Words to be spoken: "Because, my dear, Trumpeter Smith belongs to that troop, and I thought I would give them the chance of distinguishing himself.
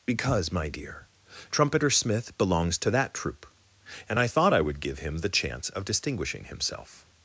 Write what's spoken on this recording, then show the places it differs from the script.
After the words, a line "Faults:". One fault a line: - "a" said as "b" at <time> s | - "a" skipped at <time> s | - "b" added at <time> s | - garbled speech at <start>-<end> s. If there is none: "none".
"Because, my dear, Trumpeter Smith belongs to that troop, and I thought I would give him the chance of distinguishing himself.
Faults:
- "them" said as "him" at 5.0 s